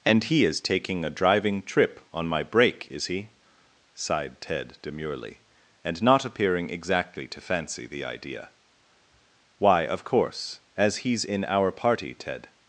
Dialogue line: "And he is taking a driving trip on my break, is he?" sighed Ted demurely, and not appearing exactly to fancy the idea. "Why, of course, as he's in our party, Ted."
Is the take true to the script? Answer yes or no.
yes